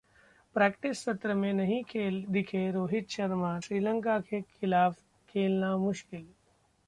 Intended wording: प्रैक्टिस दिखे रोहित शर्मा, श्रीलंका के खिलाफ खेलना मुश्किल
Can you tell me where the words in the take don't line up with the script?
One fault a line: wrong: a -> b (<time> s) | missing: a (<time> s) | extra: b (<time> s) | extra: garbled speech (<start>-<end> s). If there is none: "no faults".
extra: सत्र में नहीं (1.0 s)